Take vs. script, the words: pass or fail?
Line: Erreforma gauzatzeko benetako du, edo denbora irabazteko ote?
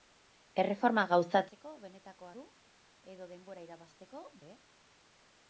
pass